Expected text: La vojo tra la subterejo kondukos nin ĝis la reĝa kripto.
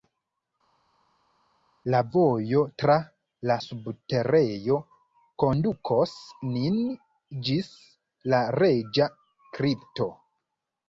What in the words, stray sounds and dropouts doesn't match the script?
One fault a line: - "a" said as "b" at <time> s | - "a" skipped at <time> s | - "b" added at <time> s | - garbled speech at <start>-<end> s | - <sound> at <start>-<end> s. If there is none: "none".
none